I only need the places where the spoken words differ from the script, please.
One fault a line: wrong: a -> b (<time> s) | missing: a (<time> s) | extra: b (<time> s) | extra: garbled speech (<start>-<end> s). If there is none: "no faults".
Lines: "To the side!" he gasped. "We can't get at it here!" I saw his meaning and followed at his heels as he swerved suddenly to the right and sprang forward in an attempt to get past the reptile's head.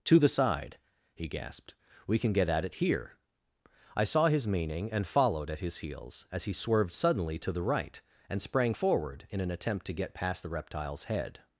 wrong: can't -> can (2.2 s)